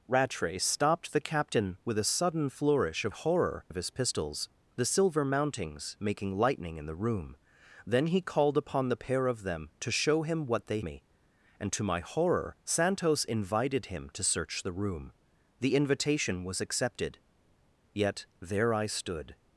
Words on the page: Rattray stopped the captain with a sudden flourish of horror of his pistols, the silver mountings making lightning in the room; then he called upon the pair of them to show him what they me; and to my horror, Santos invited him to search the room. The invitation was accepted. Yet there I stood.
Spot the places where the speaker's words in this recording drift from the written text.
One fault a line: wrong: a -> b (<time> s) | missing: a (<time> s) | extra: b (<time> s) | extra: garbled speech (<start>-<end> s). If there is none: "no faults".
no faults